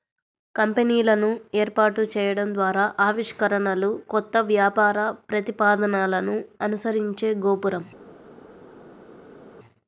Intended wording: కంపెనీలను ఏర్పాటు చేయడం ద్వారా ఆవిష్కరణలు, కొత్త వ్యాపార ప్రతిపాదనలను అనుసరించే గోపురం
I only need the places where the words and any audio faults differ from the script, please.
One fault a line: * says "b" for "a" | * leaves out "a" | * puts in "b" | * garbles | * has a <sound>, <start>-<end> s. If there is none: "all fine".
all fine